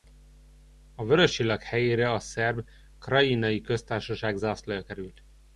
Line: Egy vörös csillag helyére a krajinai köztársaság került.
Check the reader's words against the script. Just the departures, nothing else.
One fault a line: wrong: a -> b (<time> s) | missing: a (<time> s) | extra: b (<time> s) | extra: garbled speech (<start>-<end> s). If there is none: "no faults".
wrong: Egy -> A (0.9 s)
extra: szerb (2.2 s)
extra: zászlaja (4.3 s)